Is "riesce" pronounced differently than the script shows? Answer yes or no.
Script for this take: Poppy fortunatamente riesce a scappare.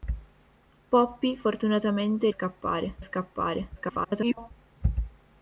yes